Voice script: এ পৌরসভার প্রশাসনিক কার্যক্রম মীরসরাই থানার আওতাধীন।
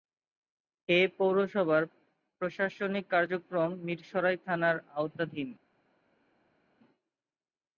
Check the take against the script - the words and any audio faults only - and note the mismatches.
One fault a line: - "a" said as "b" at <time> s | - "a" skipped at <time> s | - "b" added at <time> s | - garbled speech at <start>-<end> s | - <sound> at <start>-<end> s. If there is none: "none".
none